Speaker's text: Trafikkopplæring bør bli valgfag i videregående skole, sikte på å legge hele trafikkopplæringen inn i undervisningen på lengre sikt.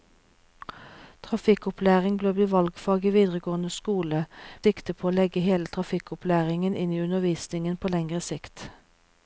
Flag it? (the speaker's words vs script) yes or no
no